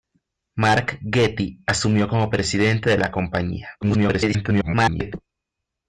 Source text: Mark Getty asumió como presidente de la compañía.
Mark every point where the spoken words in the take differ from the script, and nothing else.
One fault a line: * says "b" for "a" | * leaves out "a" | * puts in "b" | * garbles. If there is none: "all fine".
* garbles